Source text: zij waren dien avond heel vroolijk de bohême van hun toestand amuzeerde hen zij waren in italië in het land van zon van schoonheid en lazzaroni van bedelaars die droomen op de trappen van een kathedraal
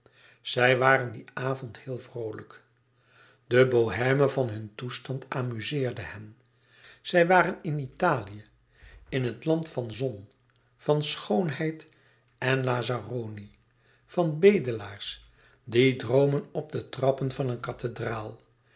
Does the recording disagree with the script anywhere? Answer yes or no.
no